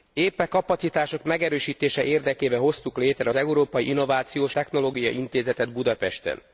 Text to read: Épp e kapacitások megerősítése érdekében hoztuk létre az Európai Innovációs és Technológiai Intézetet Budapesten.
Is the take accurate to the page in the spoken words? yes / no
no